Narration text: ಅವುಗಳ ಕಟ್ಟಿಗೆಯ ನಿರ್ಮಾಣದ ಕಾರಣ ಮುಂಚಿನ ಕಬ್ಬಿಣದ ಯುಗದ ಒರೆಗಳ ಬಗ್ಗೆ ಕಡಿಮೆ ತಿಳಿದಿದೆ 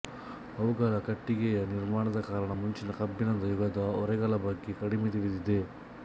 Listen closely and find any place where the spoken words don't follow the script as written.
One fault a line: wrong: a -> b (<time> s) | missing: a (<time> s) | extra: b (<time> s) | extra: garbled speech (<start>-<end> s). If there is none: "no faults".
no faults